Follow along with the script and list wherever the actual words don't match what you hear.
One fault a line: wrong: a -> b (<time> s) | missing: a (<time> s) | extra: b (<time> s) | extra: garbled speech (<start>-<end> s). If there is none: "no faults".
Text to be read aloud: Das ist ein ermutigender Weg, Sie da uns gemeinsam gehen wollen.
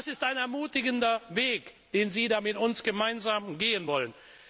extra: den (1.9 s)
extra: mit (2.4 s)